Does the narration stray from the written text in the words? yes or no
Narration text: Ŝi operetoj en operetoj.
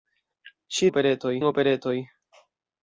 no